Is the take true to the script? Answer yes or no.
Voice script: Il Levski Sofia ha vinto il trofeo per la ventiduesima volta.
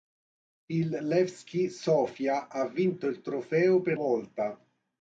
no